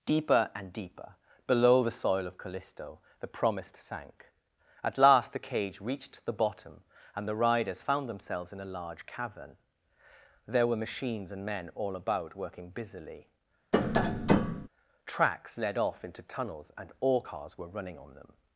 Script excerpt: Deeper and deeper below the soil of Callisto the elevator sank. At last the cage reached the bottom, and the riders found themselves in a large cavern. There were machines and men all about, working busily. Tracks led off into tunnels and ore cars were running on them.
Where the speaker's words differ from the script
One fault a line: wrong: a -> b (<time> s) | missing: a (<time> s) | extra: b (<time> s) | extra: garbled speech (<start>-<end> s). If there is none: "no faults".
wrong: elevator -> promised (3.3 s)